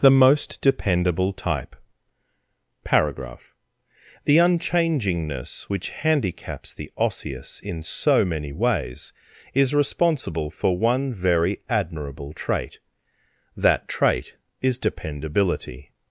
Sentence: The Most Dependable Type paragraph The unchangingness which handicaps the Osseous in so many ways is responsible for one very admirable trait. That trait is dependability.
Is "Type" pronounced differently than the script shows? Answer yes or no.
no